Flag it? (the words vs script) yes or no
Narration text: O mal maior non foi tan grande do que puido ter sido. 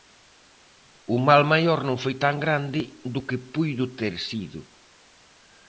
no